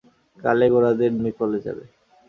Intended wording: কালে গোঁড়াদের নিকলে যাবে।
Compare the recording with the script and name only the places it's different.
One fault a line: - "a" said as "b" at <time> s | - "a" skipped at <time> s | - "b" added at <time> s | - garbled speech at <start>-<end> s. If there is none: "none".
none